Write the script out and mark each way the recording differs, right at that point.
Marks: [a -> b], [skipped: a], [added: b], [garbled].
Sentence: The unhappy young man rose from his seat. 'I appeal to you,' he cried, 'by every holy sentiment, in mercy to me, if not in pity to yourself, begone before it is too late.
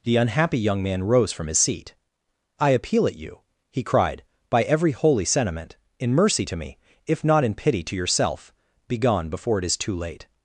The unhappy young man rose from his seat. 'I appeal [to -> at] you,' he cried, 'by every holy sentiment, in mercy to me, if not in pity to yourself, begone before it is too late.